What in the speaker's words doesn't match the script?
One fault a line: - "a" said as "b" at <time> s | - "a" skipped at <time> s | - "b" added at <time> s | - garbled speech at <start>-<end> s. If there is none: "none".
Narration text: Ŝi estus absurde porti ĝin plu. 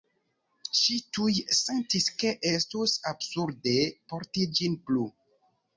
- "tuj sentis ke" added at 1.2 s